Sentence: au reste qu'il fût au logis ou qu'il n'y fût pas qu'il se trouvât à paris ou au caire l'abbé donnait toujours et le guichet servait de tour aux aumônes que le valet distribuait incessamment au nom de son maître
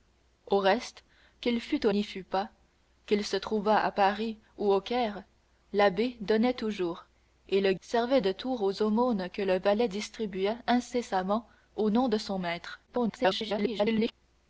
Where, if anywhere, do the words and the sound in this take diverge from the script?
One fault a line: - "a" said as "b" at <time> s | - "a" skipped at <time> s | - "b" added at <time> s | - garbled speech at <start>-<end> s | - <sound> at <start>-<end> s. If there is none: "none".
- "logis ou qu'il" skipped at 1.9 s
- "guichet" skipped at 7.7 s
- garbled speech at 12.9-14.1 s